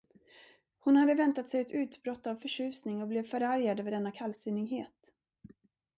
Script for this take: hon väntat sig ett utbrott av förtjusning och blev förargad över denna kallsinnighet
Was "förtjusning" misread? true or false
false